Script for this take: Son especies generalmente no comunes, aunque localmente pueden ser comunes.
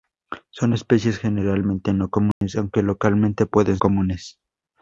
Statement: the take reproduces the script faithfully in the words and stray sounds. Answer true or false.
false